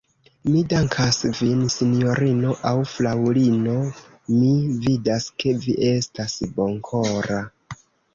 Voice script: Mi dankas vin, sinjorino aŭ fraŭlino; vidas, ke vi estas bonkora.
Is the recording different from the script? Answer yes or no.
yes